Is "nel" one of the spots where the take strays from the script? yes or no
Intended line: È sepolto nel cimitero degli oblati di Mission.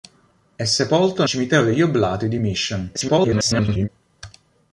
yes